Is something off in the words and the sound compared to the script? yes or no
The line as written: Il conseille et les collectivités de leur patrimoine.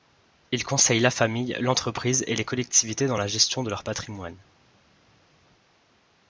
yes